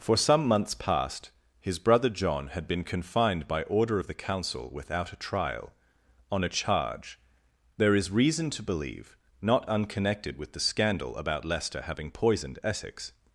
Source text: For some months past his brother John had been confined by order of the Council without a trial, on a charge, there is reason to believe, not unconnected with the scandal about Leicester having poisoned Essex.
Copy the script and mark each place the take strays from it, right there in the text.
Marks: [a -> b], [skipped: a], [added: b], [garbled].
For some months past his brother John had been confined by order of the Council without a trial, on a charge, there is reason to believe, not unconnected with the scandal about Leicester having poisoned Essex.